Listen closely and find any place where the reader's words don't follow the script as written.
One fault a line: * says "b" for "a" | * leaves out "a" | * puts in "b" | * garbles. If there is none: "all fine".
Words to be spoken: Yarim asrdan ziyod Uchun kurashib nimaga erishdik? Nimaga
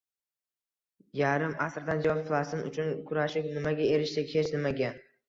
* puts in "Falastin"
* puts in "Hech"